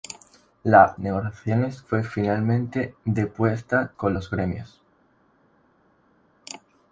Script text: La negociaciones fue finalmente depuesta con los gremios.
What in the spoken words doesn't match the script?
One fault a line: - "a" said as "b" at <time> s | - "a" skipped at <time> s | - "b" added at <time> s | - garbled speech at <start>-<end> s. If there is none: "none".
none